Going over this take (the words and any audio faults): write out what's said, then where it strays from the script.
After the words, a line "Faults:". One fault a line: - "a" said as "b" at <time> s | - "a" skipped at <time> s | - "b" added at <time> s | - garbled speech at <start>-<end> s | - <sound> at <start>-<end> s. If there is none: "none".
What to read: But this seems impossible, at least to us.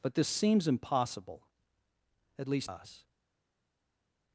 But this seems impossible, at least us.
Faults:
- "to" skipped at 2.7 s